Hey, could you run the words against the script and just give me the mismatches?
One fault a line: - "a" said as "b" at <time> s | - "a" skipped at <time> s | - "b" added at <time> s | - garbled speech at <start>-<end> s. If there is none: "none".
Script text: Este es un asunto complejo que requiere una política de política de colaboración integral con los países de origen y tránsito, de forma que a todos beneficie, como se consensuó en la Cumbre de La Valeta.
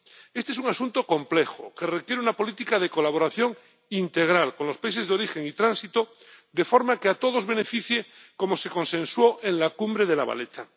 - "política de" skipped at 2.9 s